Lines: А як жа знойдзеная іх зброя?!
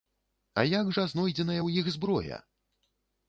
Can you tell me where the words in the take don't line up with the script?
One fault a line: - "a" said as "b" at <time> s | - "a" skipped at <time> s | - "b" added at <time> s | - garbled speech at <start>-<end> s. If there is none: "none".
- "ў" added at 1.6 s